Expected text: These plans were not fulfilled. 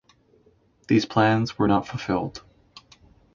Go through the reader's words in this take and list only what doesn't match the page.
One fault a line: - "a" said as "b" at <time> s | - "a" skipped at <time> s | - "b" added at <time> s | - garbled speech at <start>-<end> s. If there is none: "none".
none